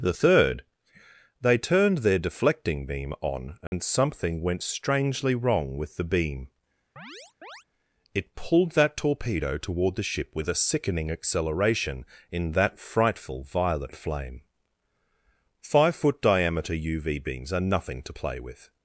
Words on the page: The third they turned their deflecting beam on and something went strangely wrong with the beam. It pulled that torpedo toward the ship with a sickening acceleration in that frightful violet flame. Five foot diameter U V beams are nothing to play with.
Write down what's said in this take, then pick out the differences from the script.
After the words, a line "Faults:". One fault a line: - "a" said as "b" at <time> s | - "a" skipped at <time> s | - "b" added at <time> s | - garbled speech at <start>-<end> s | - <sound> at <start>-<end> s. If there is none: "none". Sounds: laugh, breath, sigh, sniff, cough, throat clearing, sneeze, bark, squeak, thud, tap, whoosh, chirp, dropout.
The third they turned their deflecting beam on and something went strangely wrong with the beam. It pulled that torpedo toward the ship with a sickening acceleration in that frightful violet flame. Five foot diameter U V beams are nothing to play with.
Faults:
- dropout at 3.7-3.7 s
- chirp at 7.0-7.6 s